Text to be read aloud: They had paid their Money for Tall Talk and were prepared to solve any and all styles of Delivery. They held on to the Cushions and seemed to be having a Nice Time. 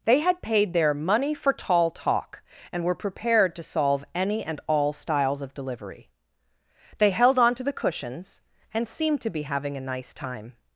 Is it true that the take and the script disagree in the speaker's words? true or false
false